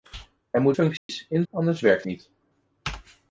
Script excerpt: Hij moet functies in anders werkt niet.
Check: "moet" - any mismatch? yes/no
no